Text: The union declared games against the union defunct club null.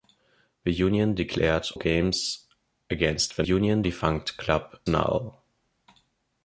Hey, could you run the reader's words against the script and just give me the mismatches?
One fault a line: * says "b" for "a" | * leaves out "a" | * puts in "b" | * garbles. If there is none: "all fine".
all fine